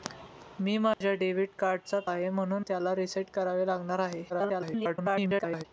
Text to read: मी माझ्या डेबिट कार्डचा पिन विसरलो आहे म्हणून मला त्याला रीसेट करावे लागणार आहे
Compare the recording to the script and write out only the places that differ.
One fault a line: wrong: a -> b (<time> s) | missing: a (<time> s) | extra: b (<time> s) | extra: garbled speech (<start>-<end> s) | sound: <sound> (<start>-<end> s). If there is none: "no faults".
sound: dropout (0.9-1.0 s)
missing: पिन विसरलो (2.0 s)
missing: मला (2.6 s)
extra: garbled speech (4.3-5.7 s)